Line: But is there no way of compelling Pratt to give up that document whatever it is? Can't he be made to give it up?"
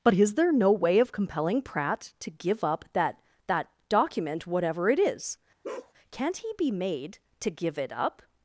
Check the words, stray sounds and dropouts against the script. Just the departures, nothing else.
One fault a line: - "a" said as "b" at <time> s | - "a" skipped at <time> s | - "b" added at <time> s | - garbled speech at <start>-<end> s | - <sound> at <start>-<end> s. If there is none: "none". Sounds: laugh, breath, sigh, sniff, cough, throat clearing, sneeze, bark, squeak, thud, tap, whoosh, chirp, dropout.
- "that" added at 3.5 s
- bark at 5.6-5.9 s